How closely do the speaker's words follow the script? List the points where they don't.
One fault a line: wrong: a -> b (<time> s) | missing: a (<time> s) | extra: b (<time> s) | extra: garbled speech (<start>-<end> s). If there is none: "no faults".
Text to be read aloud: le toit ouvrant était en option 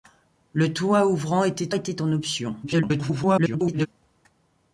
extra: était (1.7 s)
extra: garbled speech (2.6-3.9 s)